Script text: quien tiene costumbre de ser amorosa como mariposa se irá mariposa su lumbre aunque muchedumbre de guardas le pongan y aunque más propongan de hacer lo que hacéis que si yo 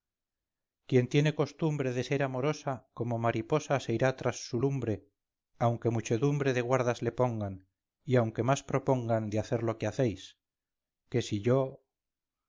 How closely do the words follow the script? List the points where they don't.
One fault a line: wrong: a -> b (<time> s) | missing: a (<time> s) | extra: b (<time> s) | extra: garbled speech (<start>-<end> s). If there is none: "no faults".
wrong: mariposa -> tras (4.2 s)